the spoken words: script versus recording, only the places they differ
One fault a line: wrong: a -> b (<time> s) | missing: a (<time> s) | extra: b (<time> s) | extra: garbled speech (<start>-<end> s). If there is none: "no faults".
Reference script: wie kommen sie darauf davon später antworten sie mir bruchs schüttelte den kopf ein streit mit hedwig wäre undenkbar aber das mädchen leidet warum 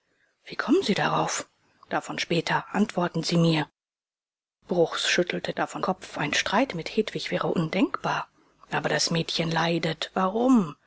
wrong: den -> davon (5.5 s)